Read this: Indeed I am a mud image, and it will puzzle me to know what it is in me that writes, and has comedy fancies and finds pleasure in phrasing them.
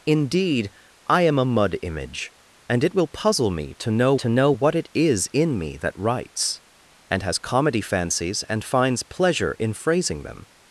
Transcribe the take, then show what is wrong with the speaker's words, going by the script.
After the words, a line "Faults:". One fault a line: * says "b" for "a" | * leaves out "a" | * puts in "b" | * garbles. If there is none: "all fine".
Indeed I am a mud image, and it will puzzle me to know to know what it is in me that writes, and has comedy fancies and finds pleasure in phrasing them.
Faults:
* puts in "to know"